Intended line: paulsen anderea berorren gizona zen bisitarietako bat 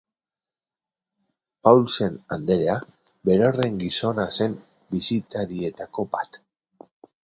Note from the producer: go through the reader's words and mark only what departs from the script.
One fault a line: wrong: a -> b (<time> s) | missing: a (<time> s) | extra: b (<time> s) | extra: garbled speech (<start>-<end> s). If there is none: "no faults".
no faults